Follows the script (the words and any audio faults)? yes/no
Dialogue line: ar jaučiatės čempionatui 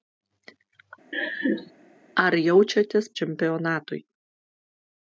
no